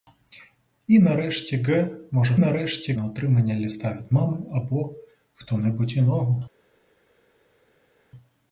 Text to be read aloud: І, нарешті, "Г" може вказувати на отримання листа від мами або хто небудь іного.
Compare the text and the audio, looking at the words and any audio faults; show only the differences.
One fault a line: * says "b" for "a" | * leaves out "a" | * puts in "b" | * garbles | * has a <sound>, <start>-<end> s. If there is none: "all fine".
* says "нарешті" for "вказувати"